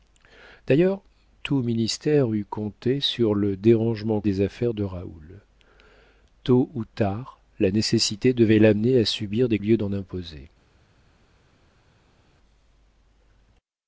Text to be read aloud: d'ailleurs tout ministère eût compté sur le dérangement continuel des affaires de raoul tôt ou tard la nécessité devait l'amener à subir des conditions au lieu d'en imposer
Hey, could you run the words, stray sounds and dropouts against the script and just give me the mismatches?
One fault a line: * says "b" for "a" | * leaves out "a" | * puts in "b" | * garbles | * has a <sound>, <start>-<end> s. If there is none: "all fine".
* leaves out "continuel"
* leaves out "conditions au"